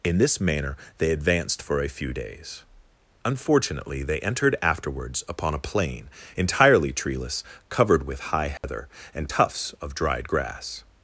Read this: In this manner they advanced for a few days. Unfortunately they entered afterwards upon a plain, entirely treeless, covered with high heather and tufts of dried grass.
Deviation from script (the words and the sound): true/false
true